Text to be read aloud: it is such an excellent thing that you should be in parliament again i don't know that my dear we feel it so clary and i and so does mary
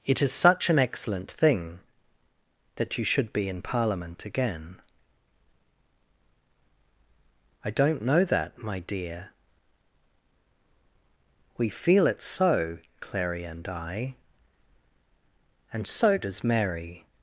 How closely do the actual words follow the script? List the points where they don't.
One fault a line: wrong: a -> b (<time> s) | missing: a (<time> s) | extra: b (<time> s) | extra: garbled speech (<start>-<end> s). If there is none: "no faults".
no faults